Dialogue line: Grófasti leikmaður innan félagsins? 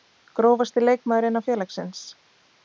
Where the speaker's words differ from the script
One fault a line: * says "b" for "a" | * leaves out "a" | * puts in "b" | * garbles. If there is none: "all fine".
all fine